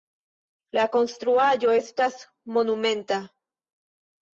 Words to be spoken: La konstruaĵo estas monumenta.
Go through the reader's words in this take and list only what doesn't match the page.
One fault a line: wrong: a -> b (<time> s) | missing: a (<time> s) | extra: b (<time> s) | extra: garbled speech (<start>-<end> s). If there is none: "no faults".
no faults